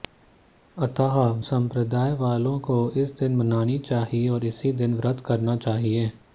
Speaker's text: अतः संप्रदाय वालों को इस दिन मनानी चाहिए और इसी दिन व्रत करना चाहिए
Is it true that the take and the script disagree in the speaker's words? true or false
false